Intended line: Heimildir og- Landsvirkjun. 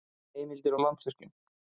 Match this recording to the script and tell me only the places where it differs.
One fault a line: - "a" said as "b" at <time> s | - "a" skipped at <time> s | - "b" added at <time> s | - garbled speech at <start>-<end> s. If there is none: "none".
none